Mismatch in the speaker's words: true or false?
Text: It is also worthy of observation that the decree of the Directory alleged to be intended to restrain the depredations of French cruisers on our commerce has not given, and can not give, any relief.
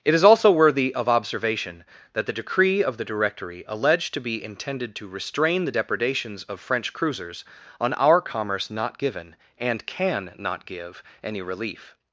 true